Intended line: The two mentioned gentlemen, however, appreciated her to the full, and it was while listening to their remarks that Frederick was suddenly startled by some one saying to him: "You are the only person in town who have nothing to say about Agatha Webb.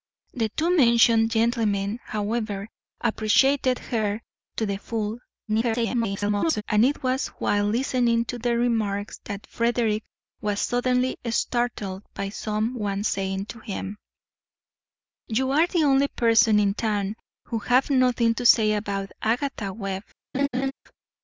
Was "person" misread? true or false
false